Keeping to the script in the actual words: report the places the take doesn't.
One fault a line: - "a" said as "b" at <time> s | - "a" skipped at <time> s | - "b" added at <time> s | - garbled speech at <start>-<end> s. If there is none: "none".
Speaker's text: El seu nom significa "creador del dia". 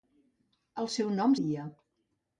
- "significa creador del" skipped at 1.4 s